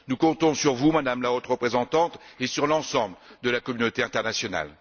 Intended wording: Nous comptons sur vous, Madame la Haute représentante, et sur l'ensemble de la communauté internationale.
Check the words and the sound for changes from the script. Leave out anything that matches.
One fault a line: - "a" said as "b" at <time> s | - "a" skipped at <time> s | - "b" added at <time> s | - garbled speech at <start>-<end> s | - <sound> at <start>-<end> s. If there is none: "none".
none